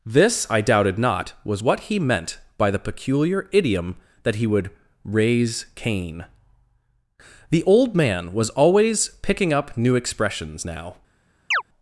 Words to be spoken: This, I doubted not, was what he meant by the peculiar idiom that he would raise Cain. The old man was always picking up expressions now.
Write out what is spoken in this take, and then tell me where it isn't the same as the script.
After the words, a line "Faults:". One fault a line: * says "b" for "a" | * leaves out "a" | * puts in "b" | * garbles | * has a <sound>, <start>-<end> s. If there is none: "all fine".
This, I doubted not, was what he meant by the peculiar idiom that he would raise Cain. The old man was always picking up new expressions now.
Faults:
* puts in "new"
* has a chirp, 11.5-11.6 s